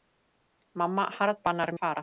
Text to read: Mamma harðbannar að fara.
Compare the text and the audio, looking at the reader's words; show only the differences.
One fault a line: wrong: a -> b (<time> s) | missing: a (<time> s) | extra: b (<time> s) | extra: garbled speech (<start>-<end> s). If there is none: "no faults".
no faults